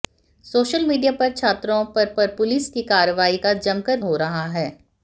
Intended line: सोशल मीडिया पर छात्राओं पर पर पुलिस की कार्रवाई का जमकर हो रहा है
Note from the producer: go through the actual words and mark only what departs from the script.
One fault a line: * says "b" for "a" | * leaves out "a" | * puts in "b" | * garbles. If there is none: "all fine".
all fine